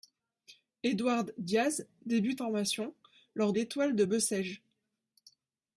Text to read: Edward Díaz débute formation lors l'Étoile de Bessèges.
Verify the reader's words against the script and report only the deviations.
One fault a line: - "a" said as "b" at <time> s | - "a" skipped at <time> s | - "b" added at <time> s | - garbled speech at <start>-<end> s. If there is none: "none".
none